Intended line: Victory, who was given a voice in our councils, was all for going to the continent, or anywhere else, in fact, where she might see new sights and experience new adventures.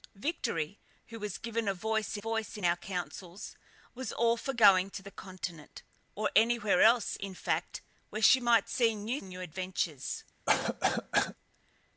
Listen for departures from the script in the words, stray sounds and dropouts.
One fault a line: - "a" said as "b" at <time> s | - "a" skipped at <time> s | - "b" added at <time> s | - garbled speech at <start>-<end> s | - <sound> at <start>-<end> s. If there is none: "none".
- "voice" added at 2.2 s
- "sights and experience" skipped at 9.2 s
- cough at 10.5-11.4 s